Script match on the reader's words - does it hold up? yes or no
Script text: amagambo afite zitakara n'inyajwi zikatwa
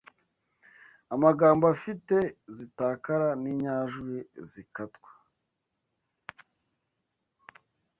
yes